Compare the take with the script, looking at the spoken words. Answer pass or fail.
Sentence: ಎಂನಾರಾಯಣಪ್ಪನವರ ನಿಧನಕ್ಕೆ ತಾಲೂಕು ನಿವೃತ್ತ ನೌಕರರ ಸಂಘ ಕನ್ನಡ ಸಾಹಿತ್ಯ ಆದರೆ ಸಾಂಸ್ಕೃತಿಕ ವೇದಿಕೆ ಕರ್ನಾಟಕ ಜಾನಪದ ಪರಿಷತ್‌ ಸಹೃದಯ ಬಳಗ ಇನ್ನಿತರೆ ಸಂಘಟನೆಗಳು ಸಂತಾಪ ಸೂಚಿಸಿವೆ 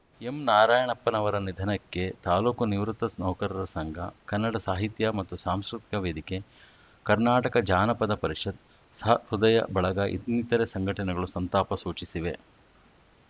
fail